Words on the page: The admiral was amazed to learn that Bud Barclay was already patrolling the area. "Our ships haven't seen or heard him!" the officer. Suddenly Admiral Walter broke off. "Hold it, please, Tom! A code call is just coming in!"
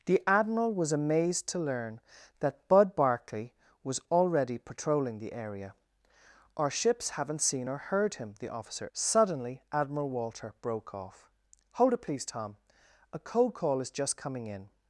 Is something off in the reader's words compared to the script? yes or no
no